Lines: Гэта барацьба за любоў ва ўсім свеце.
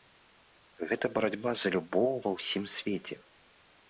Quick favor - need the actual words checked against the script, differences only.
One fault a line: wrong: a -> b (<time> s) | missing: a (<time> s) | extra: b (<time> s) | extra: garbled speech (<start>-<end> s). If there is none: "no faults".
no faults